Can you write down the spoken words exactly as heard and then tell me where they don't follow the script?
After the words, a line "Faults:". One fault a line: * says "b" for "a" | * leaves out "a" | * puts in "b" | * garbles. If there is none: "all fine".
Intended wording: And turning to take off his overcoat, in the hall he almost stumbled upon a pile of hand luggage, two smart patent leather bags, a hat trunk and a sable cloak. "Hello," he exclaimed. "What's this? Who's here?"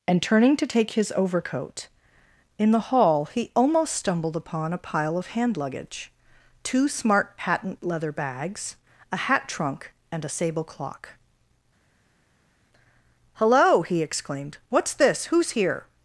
And turning to take his overcoat, in the hall he almost stumbled upon a pile of hand luggage, two smart patent leather bags, a hat trunk and a sable clock. "Hello," he exclaimed. "What's this? Who's here?"
Faults:
* leaves out "off"
* says "clock" for "cloak"